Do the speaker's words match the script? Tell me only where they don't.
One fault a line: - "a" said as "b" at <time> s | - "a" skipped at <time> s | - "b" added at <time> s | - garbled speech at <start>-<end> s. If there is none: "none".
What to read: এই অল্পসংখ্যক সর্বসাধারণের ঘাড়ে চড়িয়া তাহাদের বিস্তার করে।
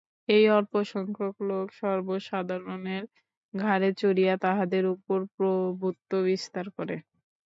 - "লোক" added at 1.5 s
- "উপর প্রভুত্ব" added at 4.9 s